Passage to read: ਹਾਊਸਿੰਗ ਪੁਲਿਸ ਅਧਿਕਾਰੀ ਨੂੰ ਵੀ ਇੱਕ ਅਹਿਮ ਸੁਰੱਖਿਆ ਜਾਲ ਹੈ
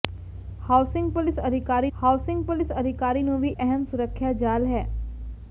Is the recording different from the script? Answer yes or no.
yes